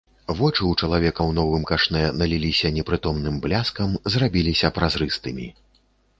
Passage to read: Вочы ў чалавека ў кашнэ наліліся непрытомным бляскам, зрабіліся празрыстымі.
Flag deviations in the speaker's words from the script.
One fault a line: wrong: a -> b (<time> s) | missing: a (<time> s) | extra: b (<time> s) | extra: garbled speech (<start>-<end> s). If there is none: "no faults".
extra: новым (1.4 s)